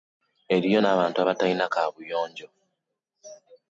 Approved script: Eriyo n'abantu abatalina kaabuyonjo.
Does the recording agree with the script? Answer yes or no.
yes